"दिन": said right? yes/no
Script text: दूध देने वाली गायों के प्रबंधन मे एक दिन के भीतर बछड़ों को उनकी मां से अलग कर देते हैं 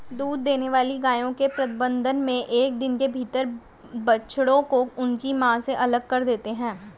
yes